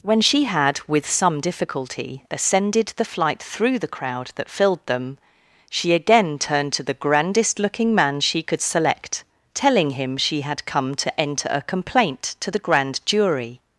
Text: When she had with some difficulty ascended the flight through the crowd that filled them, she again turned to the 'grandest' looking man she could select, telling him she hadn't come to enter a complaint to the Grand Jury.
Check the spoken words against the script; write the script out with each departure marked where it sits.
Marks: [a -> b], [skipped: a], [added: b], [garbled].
When she had with some difficulty ascended the flight through the crowd that filled them, she again turned to the 'grandest' looking man she could select, telling him she [hadn't -> had] come to enter a complaint to the Grand Jury.